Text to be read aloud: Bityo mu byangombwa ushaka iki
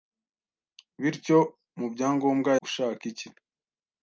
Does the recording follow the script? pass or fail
pass